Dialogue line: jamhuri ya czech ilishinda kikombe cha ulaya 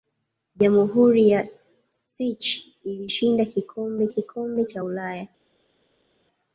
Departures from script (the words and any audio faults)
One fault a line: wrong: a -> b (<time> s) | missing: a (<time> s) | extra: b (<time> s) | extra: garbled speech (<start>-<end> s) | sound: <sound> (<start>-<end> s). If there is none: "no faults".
extra: kikombe (4.1 s)